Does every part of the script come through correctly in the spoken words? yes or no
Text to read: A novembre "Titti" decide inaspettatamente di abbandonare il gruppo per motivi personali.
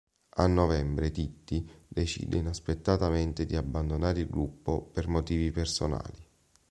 yes